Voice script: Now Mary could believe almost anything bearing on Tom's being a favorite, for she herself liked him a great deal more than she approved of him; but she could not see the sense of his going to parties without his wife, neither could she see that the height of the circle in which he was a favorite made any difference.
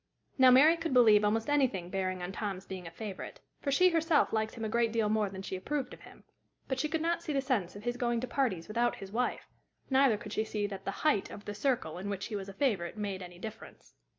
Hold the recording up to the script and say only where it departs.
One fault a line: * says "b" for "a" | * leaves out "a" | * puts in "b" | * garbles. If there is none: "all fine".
all fine